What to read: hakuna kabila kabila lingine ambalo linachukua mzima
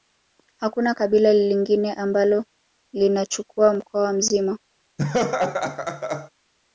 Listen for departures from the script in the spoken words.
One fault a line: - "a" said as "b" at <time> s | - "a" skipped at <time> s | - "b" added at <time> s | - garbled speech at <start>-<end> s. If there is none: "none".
- "kabila" skipped at 1.3 s
- "mkoa" added at 3.7 s